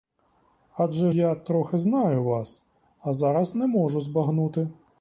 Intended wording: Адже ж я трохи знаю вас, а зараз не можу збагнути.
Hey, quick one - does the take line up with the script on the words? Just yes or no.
no